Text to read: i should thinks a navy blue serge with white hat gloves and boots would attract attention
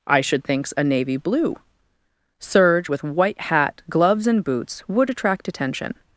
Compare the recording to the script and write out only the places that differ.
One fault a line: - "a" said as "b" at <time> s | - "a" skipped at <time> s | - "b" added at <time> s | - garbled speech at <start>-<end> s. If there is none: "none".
none